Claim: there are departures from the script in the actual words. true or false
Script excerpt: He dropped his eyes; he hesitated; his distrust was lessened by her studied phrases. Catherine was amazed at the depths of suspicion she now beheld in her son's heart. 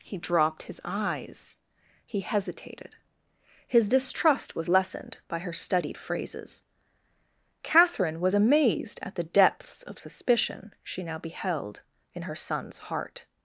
false